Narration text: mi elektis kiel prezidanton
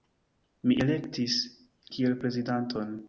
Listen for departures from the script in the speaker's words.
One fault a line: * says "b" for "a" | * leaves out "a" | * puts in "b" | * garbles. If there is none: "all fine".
all fine